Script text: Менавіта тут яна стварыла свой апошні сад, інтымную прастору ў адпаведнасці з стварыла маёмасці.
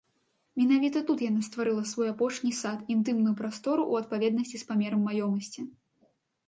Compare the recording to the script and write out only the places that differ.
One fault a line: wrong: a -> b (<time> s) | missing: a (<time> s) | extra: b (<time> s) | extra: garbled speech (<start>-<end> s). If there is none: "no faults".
wrong: стварыла -> памерам (4.7 s)